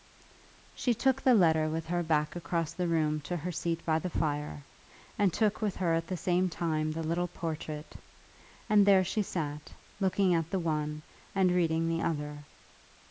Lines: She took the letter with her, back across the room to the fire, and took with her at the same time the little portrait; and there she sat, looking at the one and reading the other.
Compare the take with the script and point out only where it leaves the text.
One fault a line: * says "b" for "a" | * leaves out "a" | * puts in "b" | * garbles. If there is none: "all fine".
* puts in "her seat by"